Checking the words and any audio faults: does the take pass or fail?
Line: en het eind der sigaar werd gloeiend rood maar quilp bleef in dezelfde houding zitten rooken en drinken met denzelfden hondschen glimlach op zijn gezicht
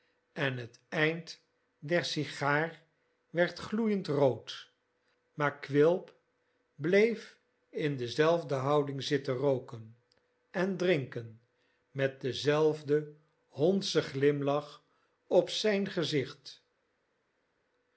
pass